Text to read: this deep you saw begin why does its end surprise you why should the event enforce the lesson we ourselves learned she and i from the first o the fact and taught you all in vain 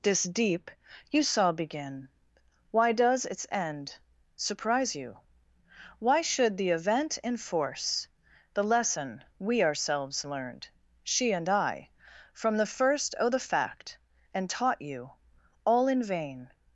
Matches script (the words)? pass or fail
pass